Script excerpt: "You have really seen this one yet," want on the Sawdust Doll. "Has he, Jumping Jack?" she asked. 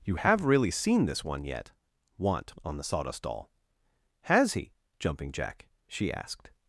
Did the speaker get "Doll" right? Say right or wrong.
right